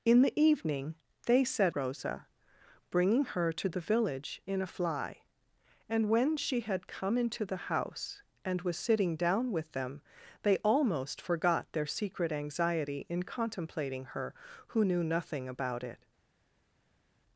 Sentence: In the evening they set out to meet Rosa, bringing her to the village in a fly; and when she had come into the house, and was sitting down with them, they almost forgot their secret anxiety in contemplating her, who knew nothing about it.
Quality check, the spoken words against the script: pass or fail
fail